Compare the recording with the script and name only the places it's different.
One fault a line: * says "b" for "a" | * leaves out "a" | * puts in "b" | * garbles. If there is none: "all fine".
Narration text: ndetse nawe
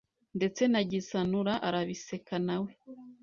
* puts in "na Gisanura arabiseka"